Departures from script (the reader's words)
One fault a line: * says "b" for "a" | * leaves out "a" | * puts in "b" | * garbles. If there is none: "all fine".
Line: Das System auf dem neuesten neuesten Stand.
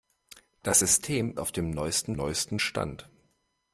all fine